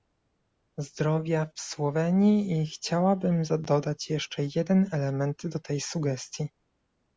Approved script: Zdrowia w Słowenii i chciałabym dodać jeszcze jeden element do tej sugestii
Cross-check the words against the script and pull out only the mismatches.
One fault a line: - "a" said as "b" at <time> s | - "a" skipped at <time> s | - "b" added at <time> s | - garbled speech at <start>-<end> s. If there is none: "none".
none